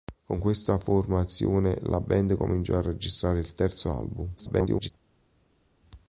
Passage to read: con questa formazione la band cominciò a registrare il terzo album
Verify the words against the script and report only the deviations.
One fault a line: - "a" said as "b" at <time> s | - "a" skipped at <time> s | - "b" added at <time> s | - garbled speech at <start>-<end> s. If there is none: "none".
- garbled speech at 4.4-4.9 s